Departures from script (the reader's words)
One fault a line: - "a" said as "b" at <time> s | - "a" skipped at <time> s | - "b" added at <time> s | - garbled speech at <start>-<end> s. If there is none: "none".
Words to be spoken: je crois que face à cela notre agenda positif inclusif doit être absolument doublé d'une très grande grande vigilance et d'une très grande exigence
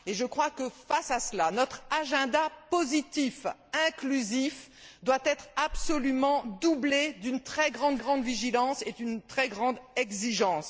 none